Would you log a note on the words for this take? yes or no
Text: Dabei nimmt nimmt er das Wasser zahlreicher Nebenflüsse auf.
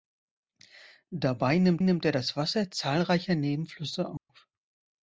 no